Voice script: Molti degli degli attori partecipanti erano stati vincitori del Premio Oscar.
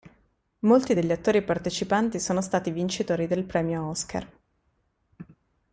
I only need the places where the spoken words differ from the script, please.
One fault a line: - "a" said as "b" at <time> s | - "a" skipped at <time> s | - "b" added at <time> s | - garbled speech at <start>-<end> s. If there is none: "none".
- "degli" skipped at 1.1 s
- "erano" said as "sono" at 2.2 s